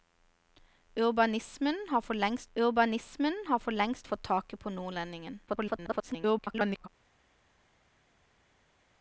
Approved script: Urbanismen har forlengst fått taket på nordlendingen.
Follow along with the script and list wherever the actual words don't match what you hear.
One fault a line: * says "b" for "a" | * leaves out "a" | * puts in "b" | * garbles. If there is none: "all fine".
* puts in "urbanismen har forlengst"
* garbles